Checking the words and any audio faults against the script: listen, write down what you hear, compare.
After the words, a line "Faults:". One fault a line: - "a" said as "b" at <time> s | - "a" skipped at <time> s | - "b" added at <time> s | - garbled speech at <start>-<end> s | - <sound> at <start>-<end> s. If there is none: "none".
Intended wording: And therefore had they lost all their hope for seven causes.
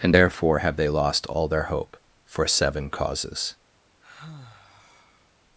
And therefore have they lost all their hope for seven causes.
Faults:
- "had" said as "have" at 0.6 s
- sigh at 4.0-5.3 s